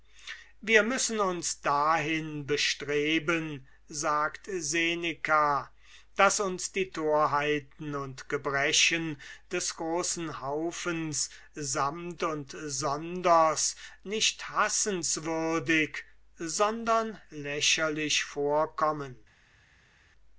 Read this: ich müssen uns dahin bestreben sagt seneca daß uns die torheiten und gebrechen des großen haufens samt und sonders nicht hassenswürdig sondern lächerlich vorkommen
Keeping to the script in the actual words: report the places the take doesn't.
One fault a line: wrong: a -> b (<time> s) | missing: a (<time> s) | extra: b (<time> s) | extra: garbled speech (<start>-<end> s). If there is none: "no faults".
wrong: ich -> wir (0.6 s)